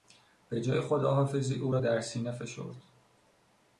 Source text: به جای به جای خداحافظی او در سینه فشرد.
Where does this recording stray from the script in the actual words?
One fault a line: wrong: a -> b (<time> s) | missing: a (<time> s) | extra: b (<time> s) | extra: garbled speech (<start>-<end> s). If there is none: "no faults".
missing: به جای (0.8 s)
extra: را (1.7 s)